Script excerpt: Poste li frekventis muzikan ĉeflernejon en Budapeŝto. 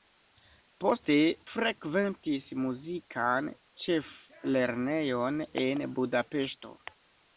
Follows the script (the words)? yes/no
no